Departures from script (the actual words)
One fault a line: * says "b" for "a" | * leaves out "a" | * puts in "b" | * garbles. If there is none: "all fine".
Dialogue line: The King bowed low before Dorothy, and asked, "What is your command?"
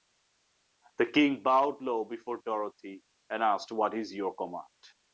all fine